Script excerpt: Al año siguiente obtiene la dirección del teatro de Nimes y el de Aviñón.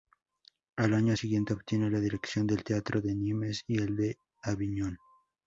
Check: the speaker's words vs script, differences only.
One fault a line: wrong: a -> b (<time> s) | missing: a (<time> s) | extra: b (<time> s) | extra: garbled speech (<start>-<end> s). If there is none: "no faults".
no faults